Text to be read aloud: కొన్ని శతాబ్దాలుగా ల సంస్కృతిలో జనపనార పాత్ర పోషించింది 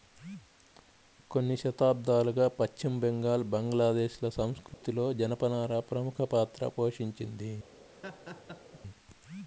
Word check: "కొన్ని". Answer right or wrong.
right